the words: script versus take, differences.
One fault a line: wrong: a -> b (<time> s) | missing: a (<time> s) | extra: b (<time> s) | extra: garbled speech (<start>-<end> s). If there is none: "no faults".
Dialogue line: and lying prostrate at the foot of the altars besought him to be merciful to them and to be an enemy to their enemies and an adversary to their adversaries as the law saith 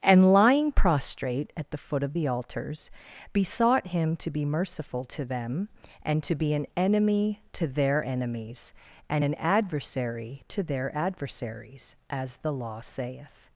no faults